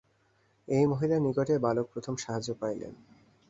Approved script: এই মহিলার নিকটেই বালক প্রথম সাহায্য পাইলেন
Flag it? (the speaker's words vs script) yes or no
no